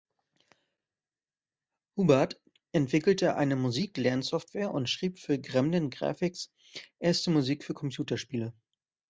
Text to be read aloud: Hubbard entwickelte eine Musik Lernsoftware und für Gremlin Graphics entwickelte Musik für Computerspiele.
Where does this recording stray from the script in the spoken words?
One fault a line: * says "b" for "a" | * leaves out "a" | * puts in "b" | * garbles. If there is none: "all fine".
* puts in "schrieb"
* says "erste" for "entwickelte"